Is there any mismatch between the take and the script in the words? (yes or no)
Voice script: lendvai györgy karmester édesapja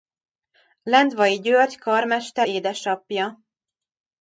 no